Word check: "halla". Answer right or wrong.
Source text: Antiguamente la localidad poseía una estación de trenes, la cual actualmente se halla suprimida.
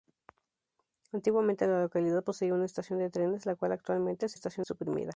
wrong